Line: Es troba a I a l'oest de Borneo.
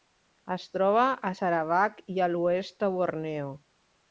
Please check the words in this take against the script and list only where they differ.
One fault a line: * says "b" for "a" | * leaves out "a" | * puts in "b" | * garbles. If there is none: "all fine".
* puts in "Sarawak"